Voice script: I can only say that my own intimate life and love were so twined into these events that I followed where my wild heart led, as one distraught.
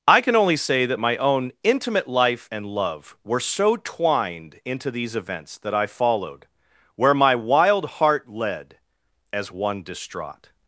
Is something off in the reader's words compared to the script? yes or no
no